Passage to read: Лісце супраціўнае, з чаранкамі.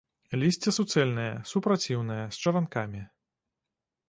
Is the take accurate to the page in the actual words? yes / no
no